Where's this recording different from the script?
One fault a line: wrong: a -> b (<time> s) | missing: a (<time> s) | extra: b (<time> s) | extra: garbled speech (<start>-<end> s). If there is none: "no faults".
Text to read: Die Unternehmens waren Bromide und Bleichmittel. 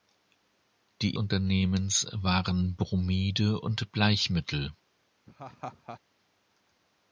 no faults